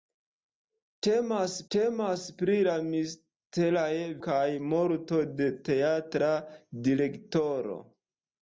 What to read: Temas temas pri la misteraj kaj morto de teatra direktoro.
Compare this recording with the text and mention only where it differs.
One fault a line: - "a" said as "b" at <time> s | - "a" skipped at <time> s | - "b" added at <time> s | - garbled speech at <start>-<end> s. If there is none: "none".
none